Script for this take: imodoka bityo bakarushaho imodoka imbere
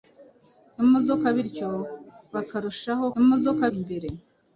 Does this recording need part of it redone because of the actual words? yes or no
no